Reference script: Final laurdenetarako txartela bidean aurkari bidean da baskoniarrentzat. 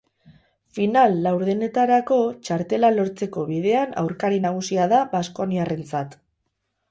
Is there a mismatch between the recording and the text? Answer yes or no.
yes